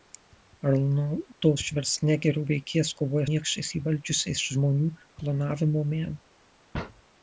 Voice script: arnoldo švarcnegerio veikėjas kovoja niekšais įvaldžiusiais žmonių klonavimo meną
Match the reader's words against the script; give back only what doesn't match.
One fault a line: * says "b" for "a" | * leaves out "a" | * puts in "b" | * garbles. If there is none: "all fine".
all fine